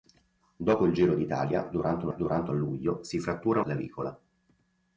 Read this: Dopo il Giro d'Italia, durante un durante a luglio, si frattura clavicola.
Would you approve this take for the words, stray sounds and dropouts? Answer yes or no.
yes